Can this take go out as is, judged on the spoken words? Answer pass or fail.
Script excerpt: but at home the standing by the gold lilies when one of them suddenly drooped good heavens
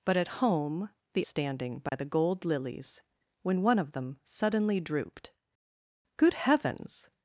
pass